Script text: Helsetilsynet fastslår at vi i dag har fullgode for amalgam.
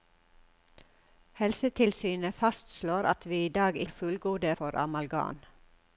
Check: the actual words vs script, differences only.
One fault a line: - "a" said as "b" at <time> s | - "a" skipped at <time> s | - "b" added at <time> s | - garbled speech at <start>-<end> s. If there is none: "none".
none